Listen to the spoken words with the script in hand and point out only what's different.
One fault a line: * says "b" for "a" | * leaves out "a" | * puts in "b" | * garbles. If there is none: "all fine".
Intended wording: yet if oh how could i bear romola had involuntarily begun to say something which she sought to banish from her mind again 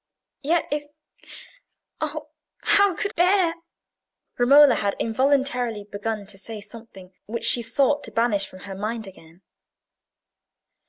* leaves out "i"